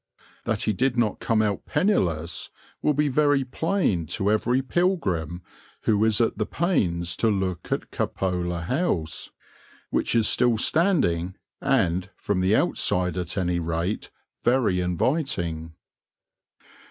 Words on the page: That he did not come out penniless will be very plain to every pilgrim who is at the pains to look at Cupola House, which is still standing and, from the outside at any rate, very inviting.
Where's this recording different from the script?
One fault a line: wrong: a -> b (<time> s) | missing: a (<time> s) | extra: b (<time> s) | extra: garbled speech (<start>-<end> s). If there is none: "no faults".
no faults